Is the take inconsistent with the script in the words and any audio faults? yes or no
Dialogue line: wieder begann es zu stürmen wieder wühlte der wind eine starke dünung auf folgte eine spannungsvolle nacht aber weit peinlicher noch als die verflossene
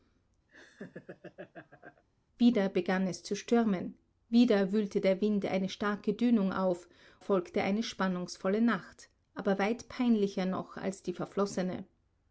yes